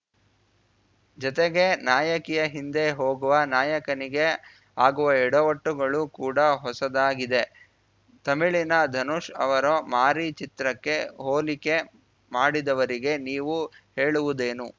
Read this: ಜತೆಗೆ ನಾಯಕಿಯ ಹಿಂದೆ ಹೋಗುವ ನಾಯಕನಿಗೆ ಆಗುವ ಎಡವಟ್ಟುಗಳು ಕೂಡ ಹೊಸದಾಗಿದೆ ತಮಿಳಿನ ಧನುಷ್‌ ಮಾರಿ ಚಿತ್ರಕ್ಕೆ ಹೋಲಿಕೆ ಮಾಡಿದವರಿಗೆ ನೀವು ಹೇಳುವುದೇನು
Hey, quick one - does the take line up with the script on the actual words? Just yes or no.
no